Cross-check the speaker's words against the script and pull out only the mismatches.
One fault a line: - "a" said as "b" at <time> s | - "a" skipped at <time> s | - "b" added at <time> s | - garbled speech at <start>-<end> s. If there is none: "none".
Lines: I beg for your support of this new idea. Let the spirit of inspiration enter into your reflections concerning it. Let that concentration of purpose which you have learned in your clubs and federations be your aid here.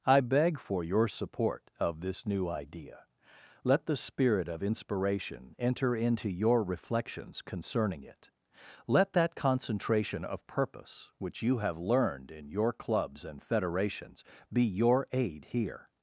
none